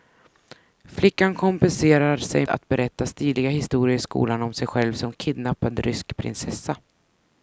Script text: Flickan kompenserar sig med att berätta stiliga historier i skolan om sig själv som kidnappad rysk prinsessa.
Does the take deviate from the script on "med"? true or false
true